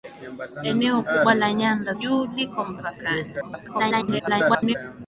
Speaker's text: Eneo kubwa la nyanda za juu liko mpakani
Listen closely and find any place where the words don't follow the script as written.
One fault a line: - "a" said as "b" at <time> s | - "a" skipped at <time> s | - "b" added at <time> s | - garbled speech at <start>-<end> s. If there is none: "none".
- "za" skipped at 1.9 s
- garbled speech at 3.4-4.8 s